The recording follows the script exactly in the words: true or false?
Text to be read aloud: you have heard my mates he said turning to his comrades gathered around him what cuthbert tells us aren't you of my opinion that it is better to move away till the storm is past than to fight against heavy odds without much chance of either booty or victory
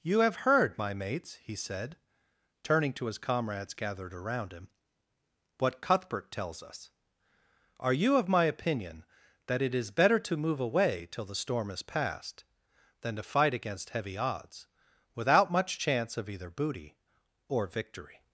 false